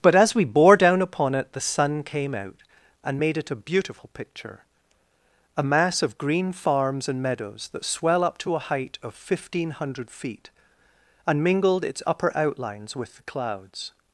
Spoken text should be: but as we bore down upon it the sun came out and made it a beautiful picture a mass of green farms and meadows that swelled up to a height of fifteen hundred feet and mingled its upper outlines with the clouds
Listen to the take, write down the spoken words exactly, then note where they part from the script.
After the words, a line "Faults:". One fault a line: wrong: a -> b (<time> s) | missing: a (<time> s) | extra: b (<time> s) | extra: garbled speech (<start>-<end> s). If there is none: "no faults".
but as we bore down upon it the sun came out and made it a beautiful picture a mass of green farms and meadows that swell up to a height of fifteen hundred feet and mingled its upper outlines with the clouds
Faults:
wrong: swelled -> swell (7.8 s)